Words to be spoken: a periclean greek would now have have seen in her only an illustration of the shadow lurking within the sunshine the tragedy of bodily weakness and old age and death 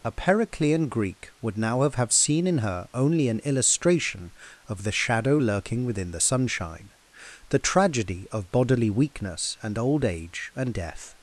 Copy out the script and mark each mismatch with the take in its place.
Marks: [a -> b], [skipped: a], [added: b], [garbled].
a periclean greek would now have have seen in her only an illustration of the shadow lurking within the sunshine the tragedy of bodily weakness and old age and death